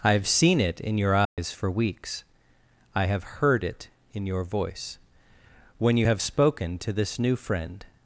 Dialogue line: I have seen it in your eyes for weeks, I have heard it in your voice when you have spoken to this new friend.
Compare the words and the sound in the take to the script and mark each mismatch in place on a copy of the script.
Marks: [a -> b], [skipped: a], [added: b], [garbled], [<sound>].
I have seen it in your eyes [dropout] for weeks, I have heard it in your voice when you have spoken to this new friend.